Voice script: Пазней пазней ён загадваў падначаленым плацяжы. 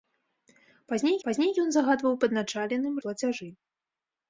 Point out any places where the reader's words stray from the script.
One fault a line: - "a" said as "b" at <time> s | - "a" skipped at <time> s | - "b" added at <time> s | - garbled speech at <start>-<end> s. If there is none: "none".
none